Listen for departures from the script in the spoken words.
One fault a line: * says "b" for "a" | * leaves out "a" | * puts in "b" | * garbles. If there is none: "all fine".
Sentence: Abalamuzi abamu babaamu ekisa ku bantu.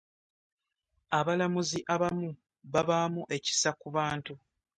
all fine